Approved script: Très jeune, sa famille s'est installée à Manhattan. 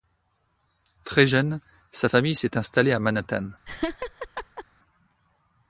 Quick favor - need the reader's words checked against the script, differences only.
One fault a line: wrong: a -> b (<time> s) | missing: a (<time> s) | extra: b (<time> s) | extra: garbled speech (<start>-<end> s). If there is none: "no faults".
no faults